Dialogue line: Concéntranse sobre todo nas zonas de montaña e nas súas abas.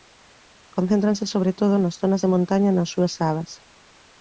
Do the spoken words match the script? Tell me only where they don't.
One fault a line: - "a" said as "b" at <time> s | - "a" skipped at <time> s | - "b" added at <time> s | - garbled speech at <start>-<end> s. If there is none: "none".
none